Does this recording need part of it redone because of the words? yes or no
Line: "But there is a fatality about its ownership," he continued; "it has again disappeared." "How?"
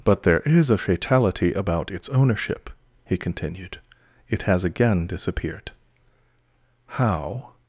no